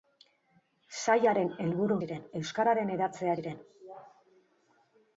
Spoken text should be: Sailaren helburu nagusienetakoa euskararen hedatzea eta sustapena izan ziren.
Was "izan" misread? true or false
true